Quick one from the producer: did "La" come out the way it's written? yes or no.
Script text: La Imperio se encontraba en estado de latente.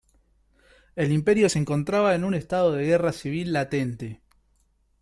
no